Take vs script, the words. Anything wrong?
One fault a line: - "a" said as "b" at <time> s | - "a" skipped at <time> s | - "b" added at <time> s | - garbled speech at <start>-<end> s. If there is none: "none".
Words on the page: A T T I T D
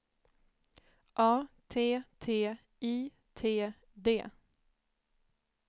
none